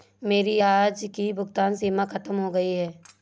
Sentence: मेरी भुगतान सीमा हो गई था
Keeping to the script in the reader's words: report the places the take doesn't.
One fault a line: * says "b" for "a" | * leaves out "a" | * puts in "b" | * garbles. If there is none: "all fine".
* puts in "आज की"
* puts in "खत्म"
* says "है" for "था"